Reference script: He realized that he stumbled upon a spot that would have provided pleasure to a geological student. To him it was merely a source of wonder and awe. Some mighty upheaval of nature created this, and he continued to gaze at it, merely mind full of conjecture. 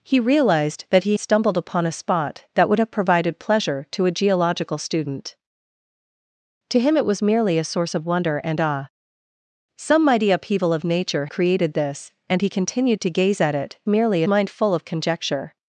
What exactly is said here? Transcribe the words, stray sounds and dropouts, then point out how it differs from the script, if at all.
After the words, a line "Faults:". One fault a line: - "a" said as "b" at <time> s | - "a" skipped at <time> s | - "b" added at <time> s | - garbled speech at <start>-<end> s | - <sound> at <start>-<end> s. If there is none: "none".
He realized that he stumbled upon a spot that would have provided pleasure to a geological student. To him it was merely a source of wonder and awe. Some mighty upheaval of nature created this, and he continued to gaze at it, merely mind full of conjecture.
Faults:
none